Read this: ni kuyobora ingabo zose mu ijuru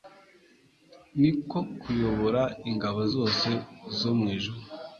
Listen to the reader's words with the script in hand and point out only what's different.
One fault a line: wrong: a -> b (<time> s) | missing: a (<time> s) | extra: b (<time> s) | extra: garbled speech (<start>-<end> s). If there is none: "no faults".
extra: ko (1.5 s)
extra: zo (4.0 s)